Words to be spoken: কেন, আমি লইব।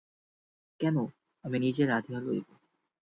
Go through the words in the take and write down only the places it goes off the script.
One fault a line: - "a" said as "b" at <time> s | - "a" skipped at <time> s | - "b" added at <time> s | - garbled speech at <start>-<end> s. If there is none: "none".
- "নিজে রাঁধিয়া" added at 1.6 s